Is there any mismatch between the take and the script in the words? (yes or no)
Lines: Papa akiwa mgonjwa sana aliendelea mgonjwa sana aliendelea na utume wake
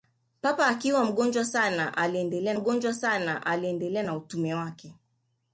no